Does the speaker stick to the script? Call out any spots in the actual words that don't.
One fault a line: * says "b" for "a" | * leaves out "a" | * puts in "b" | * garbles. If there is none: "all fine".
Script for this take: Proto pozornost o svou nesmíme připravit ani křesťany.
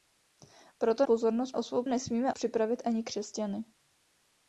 all fine